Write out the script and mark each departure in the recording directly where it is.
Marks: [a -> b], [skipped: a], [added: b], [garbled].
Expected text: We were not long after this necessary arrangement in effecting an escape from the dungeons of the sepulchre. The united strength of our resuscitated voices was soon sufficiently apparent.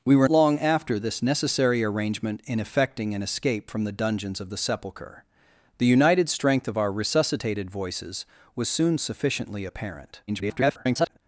We were [skipped: not] long after this necessary arrangement in effecting an escape from the dungeons of the sepulchre. The united strength of our resuscitated voices was soon sufficiently apparent. [garbled]